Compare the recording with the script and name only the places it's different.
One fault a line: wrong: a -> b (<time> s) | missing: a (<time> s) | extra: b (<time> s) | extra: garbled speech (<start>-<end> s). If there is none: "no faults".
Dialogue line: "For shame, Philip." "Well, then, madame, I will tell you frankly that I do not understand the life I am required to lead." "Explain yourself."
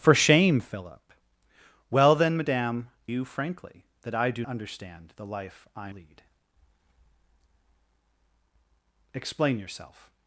missing: I will tell (2.9 s)
missing: not (4.4 s)
missing: am required to (5.9 s)